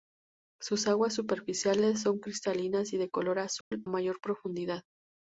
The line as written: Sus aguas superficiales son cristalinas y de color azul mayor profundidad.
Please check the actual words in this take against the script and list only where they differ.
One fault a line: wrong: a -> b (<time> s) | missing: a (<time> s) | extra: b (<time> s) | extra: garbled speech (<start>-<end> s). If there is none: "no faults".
no faults